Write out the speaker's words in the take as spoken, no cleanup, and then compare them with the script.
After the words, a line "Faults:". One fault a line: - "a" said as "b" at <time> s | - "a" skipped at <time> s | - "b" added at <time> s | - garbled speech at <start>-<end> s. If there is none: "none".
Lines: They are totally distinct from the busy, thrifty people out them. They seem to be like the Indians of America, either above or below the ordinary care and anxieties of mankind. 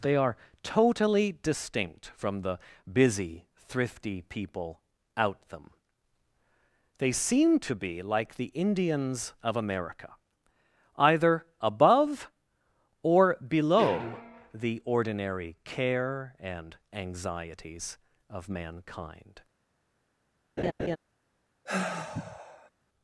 They are totally distinct from the busy, thrifty people out them. They seem to be like the Indians of America, either above or below the ordinary care and anxieties of mankind.
Faults:
none